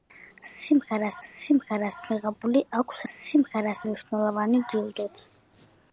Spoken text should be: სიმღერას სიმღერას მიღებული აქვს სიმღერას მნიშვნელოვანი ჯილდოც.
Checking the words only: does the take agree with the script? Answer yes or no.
yes